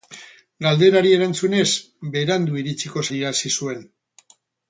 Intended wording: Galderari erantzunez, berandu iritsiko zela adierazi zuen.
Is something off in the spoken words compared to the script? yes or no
yes